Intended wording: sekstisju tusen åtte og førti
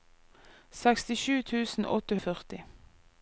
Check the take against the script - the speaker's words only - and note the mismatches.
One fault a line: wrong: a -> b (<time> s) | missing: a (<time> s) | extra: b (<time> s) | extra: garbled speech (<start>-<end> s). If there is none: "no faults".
no faults